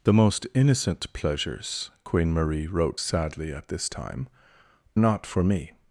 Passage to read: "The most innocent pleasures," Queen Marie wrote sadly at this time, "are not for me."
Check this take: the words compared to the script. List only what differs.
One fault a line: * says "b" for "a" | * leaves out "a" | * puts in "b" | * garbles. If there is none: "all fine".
* leaves out "are"